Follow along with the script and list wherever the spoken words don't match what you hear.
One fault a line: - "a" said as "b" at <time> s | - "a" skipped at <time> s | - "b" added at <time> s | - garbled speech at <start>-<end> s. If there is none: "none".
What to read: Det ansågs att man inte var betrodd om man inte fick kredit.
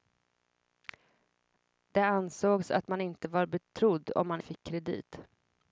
- "inte" skipped at 4.4 s